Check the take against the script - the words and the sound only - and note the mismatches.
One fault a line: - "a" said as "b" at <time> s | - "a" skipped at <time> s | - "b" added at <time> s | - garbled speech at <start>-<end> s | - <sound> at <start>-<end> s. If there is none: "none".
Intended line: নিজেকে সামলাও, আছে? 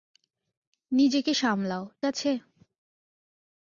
none